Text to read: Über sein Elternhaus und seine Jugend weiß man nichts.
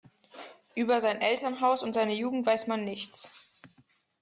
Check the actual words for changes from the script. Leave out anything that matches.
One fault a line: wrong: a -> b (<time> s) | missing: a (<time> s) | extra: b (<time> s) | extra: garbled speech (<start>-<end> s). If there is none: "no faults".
no faults